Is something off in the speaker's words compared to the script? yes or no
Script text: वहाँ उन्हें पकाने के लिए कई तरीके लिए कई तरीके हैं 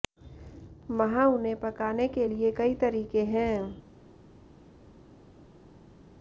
yes